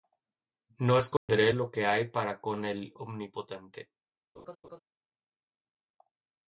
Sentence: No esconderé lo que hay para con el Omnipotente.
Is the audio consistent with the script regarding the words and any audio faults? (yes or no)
no